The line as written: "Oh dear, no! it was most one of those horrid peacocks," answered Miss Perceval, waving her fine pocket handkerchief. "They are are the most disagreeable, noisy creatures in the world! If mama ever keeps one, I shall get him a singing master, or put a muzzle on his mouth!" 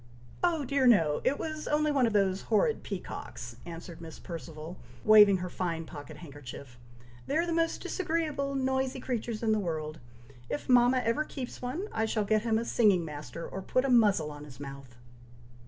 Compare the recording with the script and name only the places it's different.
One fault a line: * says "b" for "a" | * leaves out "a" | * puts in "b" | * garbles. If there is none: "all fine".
* says "only" for "most"
* leaves out "are"